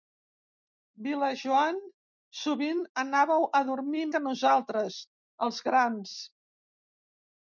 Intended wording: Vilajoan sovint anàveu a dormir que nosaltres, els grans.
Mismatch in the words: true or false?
false